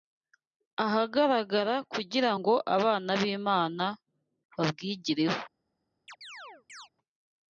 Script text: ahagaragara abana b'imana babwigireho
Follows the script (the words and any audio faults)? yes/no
no